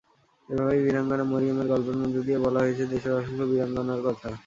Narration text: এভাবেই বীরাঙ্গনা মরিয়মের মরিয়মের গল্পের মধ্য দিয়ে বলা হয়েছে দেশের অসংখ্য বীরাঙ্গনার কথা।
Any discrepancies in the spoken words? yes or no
yes